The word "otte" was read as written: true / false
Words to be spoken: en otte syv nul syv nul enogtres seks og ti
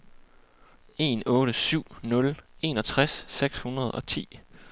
true